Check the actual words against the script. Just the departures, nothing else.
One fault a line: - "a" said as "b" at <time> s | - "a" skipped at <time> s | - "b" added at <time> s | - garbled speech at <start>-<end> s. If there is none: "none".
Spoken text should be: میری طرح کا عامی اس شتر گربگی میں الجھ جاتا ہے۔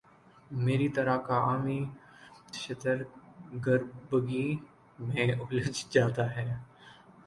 - "اس" skipped at 1.8 s